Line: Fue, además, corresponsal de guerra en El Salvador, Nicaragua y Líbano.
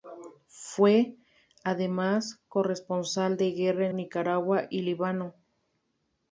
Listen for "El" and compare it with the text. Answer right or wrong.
wrong